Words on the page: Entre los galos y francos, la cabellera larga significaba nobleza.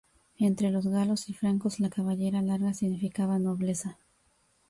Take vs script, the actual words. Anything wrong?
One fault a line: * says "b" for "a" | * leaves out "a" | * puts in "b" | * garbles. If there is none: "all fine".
all fine